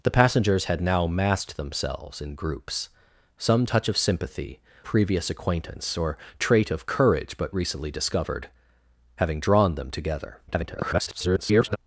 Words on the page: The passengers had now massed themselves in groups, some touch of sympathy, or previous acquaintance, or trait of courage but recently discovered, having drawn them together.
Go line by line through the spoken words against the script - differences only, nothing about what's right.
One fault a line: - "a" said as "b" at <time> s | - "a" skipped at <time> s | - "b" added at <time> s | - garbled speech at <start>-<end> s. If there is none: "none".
- "or" skipped at 4.6 s
- garbled speech at 10.5-11.8 s